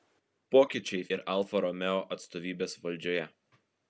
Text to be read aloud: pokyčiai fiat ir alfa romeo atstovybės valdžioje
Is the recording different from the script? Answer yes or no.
yes